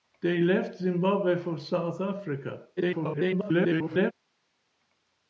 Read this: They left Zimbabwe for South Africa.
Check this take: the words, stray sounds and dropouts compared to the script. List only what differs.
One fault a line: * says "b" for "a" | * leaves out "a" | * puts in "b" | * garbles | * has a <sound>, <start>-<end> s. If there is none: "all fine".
* garbles